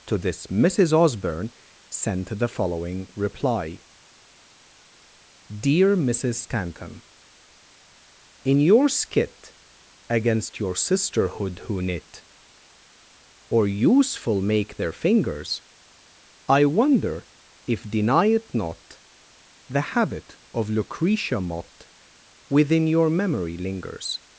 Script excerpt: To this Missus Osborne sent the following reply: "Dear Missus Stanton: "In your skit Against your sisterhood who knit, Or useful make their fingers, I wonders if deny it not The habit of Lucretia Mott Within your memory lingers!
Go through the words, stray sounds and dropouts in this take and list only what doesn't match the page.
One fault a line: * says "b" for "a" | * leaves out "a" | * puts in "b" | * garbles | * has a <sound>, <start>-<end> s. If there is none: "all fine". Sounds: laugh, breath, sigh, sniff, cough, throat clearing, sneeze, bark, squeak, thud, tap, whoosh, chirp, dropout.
* says "wonder" for "wonders"